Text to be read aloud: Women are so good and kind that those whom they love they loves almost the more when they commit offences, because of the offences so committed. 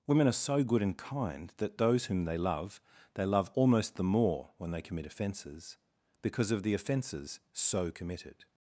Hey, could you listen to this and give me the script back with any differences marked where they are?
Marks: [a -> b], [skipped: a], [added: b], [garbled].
Women are so good and kind that those whom they love they [loves -> love] almost the more when they commit offences, because of the offences so committed.